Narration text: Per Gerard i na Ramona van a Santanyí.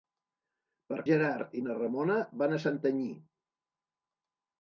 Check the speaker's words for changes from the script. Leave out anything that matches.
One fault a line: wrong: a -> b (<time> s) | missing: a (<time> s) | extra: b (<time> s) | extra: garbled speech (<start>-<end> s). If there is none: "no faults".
no faults